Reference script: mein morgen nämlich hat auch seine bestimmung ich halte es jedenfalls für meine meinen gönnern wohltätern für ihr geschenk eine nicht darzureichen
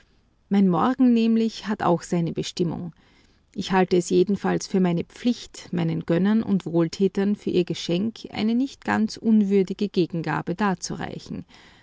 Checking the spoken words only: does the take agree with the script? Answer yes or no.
no